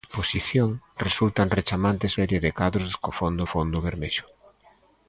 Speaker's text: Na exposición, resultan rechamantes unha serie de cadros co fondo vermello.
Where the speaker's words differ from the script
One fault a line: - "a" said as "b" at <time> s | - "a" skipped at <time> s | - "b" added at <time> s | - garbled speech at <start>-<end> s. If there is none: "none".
- "unha" skipped at 2.1 s
- "fondo" added at 3.5 s